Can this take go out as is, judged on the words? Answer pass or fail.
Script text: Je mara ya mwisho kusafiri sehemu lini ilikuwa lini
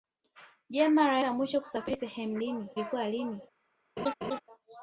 pass